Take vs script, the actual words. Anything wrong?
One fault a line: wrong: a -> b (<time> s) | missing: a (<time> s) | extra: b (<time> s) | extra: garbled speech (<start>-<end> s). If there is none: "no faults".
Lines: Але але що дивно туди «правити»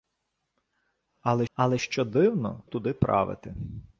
no faults